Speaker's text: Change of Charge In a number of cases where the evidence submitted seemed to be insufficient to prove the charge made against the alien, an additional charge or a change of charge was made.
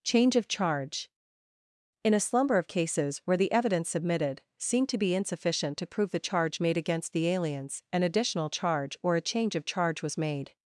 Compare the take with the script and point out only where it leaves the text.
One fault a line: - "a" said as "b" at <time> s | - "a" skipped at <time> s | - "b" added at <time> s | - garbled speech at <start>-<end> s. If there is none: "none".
- "number" said as "slumber" at 2.2 s
- "alien" said as "aliens" at 7.3 s